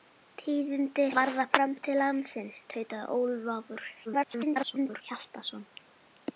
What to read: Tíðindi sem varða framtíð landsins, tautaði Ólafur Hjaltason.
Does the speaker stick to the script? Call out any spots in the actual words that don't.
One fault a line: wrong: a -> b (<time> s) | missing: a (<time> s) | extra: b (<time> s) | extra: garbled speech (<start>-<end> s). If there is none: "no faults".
missing: sem (1.0 s)
extra: garbled speech (4.1-5.0 s)